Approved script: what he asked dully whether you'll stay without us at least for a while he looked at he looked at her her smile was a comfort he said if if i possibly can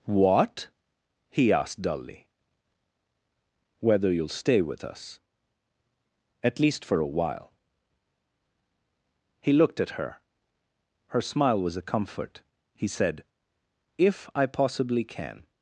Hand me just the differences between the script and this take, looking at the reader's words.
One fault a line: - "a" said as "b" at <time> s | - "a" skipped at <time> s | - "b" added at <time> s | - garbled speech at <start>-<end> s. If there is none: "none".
- "without" said as "with" at 4.6 s
- "he looked at" skipped at 9.9 s
- "if" skipped at 14.3 s